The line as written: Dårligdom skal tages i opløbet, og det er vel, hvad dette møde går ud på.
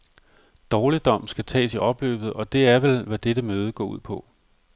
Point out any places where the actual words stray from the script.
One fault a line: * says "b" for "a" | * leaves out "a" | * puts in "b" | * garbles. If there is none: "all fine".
all fine